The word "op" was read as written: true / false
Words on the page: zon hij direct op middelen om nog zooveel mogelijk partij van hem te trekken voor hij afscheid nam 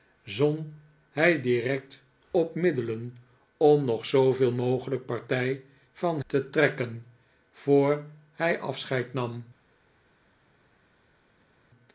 true